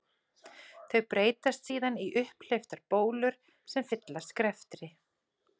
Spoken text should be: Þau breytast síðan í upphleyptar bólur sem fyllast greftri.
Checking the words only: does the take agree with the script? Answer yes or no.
yes